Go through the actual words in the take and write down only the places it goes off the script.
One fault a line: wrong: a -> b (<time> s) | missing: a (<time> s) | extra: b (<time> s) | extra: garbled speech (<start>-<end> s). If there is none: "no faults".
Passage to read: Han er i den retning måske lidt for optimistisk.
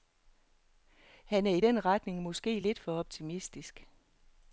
no faults